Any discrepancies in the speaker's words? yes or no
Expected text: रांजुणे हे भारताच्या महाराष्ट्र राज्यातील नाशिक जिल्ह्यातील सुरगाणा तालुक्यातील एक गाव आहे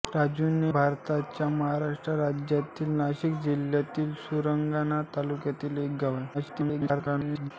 yes